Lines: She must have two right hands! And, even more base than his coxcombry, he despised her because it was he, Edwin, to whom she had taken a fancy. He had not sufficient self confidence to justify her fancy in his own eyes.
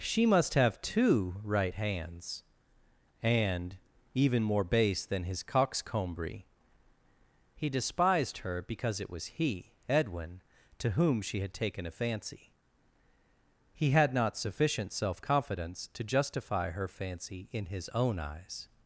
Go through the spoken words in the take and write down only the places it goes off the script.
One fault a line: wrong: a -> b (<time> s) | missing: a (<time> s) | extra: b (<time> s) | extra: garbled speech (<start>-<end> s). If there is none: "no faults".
no faults